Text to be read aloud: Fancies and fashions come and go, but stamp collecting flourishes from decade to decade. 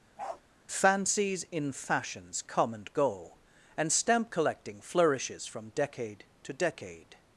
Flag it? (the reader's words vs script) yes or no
yes